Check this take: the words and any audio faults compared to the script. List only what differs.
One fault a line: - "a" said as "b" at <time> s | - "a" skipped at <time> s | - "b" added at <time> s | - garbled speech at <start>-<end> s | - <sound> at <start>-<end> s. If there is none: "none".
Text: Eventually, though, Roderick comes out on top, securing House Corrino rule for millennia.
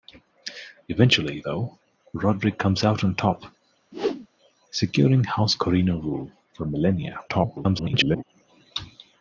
- whoosh at 3.9-4.3 s
- garbled speech at 7.3-8.2 s